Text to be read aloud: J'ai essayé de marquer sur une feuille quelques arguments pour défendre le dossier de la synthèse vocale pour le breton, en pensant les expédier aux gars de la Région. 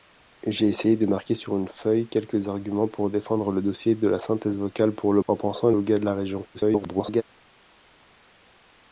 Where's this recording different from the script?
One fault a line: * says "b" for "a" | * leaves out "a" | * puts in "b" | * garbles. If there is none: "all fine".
* leaves out "breton"
* leaves out "les expédier"
* garbles